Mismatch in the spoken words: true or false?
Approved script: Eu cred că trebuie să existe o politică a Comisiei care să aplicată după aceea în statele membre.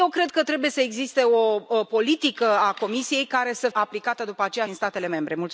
false